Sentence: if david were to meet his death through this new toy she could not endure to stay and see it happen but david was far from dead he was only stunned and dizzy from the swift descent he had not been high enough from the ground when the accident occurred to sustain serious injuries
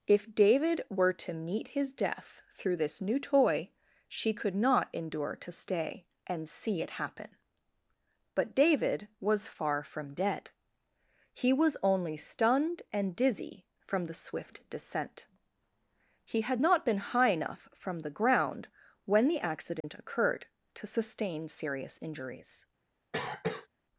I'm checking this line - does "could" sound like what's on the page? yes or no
yes